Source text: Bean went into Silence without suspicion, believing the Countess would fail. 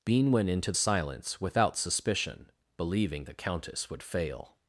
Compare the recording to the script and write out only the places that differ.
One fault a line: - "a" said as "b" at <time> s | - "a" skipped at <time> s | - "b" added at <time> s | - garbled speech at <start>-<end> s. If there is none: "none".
none